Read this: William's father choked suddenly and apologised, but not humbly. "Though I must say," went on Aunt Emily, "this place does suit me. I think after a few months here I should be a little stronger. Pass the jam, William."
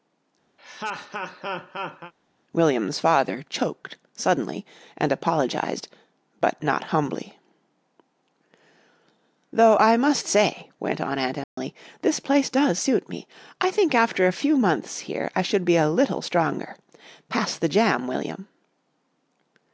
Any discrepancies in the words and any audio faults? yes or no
yes